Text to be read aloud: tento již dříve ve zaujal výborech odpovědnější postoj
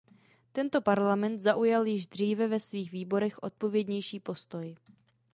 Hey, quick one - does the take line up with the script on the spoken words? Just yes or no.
no